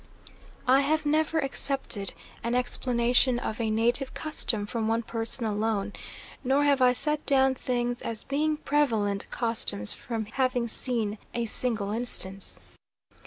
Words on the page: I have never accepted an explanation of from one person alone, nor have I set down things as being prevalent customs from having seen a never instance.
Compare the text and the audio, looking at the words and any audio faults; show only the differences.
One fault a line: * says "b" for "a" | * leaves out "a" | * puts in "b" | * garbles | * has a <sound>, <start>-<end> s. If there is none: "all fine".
* puts in "a native custom"
* says "single" for "never"